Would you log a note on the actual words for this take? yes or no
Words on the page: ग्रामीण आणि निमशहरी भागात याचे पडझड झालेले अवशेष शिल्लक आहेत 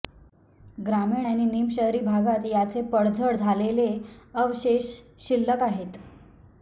no